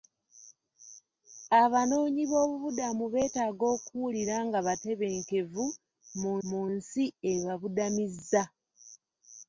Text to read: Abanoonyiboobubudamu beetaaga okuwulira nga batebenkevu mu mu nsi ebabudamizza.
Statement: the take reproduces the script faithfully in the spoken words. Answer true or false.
true